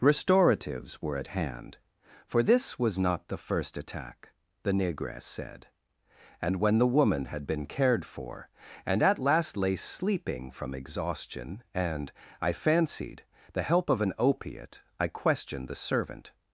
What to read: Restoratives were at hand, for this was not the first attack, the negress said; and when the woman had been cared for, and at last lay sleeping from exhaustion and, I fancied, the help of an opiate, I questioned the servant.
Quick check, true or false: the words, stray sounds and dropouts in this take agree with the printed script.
true